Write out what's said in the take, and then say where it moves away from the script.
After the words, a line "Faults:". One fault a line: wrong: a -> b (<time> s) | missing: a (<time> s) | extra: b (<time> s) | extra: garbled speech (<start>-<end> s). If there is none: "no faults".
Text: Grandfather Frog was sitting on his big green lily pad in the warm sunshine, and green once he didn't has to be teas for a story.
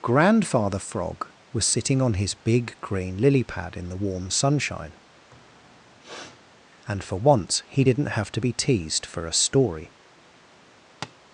Grandfather Frog was sitting on his big green lily pad in the warm sunshine, and for once he didn't have to be teased for a story.
Faults:
wrong: green -> for (7.0 s)
wrong: has -> have (8.2 s)
wrong: teas -> teased (8.5 s)